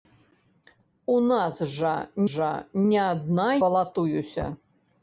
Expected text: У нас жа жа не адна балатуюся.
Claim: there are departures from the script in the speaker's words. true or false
false